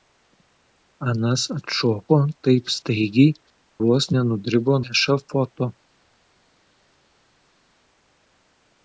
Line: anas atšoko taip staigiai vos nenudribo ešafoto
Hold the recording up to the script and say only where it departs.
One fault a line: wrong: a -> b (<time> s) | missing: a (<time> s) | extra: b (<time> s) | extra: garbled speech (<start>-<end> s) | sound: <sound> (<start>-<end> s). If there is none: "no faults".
no faults